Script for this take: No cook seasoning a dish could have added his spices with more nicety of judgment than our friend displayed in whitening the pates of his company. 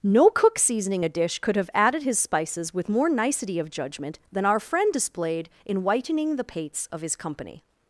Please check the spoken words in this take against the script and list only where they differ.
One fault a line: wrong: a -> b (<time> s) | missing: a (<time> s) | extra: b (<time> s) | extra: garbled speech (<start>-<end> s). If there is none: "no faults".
no faults